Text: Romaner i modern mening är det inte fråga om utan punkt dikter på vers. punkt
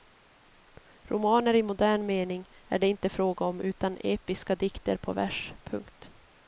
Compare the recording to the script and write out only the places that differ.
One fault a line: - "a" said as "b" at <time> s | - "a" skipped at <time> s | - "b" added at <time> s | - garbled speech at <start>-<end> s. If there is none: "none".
- "punkt" said as "episka" at 4.0 s